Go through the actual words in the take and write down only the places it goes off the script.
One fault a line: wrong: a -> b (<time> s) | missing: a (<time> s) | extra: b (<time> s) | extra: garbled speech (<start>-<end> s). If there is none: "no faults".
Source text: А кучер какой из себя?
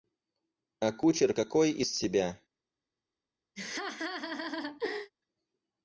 no faults